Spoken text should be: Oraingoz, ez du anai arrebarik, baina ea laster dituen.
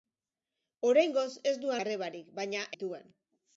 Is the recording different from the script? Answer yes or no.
yes